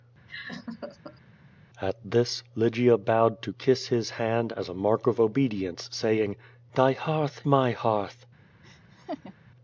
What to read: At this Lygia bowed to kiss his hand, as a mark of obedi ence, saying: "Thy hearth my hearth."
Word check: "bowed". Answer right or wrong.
right